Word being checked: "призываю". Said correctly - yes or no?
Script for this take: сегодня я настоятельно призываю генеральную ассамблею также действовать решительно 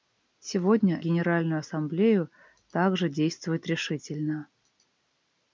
no